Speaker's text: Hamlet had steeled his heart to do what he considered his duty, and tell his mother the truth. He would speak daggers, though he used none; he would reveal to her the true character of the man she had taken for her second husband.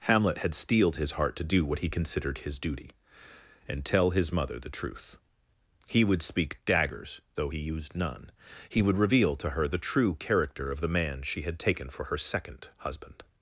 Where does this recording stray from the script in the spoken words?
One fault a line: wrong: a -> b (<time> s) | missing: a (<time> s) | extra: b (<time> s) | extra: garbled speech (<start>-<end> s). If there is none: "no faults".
no faults